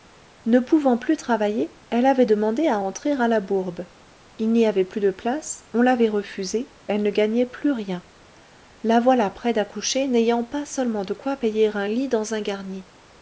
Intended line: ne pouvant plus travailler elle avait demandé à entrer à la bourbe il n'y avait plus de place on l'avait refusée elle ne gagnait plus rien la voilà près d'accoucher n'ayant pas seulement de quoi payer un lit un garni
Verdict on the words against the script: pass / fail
fail